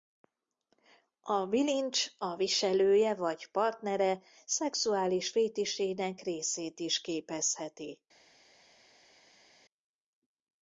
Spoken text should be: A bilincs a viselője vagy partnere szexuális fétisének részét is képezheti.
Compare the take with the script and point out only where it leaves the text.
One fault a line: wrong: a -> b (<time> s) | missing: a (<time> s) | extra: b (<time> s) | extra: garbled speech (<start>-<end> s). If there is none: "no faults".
no faults